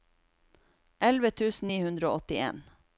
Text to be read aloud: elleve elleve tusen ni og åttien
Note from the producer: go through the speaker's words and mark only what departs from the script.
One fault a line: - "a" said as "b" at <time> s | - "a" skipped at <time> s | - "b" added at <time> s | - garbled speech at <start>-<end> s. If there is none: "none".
- "elleve" skipped at 1.3 s
- "hundre" added at 1.9 s